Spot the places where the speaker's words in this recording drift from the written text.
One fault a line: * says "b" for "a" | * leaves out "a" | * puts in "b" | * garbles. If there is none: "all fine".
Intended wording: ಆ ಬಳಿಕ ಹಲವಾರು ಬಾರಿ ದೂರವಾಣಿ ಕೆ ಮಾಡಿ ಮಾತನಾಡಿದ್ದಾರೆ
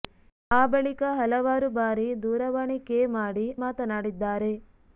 all fine